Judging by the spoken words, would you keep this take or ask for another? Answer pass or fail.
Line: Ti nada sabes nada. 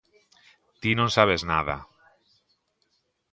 fail